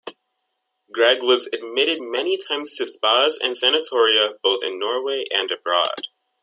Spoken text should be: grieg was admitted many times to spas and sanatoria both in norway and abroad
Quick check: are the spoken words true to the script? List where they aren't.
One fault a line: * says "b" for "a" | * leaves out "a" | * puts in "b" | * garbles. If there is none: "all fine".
all fine